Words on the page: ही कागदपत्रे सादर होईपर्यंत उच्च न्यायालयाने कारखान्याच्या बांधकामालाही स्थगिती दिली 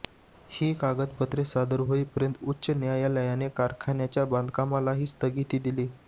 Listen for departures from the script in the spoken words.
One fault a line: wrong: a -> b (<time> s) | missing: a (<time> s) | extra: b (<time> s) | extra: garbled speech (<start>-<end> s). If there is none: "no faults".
no faults